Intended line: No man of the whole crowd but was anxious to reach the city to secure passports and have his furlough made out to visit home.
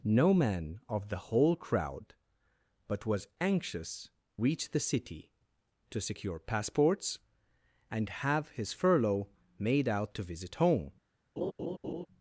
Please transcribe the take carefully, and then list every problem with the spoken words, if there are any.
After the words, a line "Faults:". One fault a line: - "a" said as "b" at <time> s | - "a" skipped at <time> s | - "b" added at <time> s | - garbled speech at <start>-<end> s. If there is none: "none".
No man of the whole crowd but was anxious reach the city to secure passports and have his furlough made out to visit home.
Faults:
- "to" skipped at 4.1 s